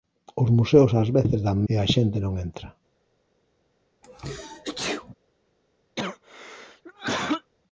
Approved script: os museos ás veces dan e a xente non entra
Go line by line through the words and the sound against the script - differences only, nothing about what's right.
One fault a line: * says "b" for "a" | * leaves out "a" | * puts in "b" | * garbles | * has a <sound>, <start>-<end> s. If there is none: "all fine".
* has a sneeze, 4.0-5.1 s
* has a cough, 6.0-7.5 s